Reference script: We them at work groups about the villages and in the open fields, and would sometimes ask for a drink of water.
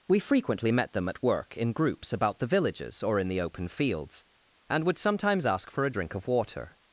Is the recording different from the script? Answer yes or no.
yes